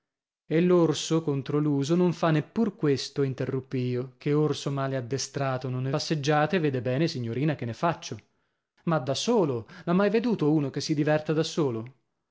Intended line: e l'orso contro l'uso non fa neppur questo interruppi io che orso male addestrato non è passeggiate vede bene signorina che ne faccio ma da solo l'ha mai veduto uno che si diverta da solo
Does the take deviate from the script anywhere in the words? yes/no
no